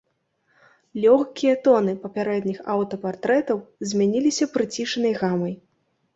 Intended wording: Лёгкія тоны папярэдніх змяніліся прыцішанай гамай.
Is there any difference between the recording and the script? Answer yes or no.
yes